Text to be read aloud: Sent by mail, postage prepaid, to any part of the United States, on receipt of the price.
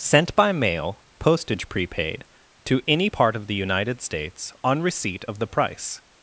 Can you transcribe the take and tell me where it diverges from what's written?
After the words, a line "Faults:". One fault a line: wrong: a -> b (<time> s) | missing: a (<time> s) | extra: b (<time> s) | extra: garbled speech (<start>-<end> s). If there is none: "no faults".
Sent by mail, postage prepaid, to any part of the United States, on receipt of the price.
Faults:
no faults